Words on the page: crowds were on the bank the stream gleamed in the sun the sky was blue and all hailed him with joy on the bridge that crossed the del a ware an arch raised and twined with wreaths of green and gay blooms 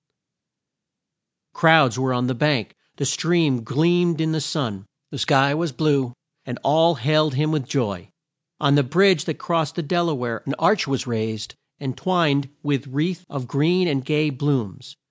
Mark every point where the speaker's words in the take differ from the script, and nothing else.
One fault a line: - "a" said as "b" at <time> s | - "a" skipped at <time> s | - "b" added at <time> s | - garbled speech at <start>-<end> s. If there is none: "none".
- "was" added at 10.9 s